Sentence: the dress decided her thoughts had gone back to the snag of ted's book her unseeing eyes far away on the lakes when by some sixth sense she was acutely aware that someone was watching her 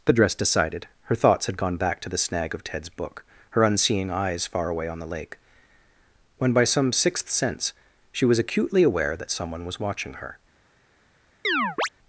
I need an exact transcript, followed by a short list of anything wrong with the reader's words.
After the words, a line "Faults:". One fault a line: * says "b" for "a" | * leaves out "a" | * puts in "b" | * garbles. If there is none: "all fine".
the dress decided her thoughts had gone back to the snag of ted's book her unseeing eyes far away on the lake when by some sixth sense she was acutely aware that someone was watching her
Faults:
* says "lake" for "lakes"